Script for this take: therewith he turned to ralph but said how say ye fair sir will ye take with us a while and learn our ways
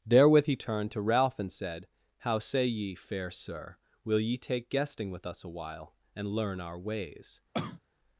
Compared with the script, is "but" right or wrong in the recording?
wrong